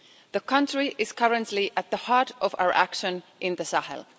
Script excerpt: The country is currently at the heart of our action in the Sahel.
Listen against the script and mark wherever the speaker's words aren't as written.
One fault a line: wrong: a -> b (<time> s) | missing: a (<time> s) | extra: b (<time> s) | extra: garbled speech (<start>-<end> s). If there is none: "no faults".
no faults